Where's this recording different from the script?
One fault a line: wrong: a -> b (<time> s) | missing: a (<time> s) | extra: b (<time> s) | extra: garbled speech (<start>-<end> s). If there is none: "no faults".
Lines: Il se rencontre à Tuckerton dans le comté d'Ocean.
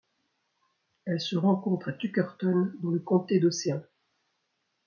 wrong: Il -> Elle (1.1 s)